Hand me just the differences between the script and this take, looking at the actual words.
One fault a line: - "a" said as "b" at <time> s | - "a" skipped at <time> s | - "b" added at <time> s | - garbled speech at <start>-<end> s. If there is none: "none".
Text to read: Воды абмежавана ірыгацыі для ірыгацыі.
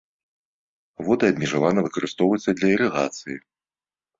- "ірыгацыі" said as "выкарыстоўваюцца" at 1.9 s